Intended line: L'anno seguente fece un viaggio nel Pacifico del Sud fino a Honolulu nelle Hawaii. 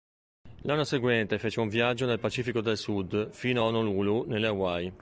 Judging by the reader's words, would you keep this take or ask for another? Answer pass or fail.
pass